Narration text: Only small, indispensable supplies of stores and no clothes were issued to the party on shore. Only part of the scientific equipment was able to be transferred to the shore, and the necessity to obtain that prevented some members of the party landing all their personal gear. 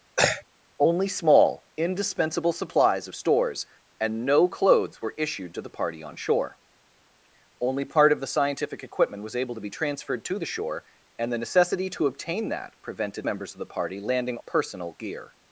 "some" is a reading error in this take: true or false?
true